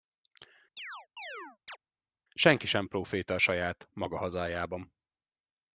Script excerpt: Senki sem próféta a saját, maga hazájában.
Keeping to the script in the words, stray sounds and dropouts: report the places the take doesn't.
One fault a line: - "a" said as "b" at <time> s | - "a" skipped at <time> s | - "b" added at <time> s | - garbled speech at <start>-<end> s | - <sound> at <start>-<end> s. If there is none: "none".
- chirp at 0.8-1.8 s